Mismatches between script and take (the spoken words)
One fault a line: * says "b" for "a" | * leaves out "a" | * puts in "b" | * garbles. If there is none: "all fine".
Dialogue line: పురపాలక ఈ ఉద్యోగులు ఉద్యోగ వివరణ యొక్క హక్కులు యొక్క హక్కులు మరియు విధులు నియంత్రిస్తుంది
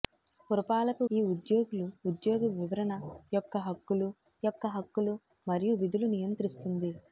all fine